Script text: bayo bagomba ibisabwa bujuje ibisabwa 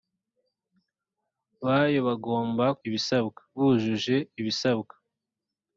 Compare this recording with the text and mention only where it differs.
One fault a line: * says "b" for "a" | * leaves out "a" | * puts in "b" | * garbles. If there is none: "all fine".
all fine